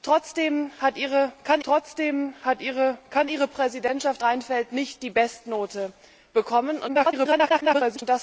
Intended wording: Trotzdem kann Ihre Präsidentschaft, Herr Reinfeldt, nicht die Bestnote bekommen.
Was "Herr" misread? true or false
true